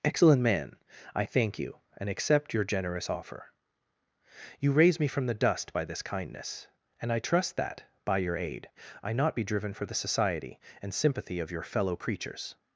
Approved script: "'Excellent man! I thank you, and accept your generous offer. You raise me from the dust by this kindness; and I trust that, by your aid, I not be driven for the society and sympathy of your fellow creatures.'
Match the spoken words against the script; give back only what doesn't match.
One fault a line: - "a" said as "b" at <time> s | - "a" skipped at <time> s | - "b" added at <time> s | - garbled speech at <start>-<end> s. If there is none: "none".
none